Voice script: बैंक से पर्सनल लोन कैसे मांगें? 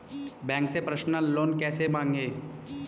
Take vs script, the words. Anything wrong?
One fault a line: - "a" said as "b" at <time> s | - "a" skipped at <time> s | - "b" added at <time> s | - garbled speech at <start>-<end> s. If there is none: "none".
none